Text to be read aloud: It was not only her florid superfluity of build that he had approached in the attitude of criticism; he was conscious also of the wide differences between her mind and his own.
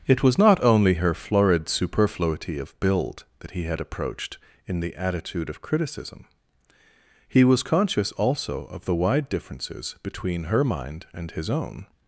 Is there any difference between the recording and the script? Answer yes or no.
no